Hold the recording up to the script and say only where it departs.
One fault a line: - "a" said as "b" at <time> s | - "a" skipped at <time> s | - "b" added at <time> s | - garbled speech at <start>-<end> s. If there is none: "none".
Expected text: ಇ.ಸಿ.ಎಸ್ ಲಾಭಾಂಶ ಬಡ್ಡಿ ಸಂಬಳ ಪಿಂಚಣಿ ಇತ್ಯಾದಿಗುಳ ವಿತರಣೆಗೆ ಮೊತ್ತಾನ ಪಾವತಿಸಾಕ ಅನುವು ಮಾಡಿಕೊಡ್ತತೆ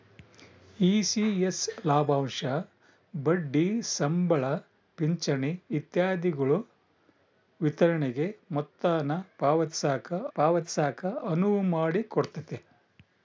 - "ಪಾವತಿಸಾಕ" added at 10.3 s